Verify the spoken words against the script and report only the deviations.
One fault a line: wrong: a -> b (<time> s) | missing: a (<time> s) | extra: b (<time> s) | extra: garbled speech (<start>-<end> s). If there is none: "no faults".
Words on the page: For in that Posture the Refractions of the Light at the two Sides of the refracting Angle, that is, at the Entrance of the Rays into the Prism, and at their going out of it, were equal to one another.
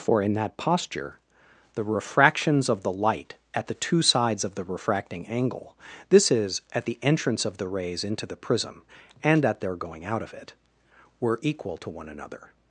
wrong: that -> this (6.1 s)